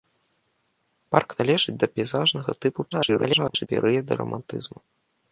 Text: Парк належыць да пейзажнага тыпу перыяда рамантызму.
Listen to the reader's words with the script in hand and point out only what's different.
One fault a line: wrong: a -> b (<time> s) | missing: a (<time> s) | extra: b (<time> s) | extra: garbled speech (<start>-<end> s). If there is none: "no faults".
extra: garbled speech (2.9-3.7 s)